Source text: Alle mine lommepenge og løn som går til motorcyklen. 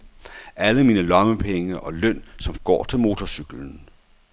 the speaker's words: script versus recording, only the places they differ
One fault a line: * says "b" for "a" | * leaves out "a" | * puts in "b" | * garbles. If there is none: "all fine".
all fine